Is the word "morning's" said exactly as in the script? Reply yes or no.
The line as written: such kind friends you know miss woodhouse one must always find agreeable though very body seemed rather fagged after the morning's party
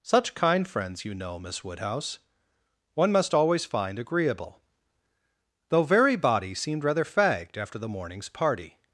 yes